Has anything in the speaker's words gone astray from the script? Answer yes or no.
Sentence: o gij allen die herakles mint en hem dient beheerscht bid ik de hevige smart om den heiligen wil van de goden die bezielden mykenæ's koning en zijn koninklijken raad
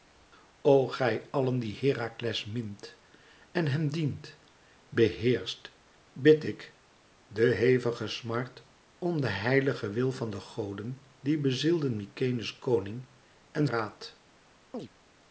yes